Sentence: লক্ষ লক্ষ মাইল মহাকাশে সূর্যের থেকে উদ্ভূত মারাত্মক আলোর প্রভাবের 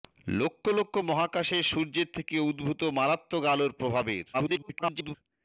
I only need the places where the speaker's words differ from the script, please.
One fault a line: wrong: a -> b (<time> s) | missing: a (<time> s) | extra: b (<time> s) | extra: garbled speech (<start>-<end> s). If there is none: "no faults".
missing: মাইল (0.9 s)
extra: garbled speech (4.3-5.1 s)